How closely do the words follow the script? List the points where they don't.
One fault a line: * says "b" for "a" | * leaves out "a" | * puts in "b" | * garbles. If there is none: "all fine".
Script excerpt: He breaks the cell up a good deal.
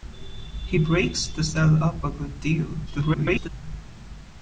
* garbles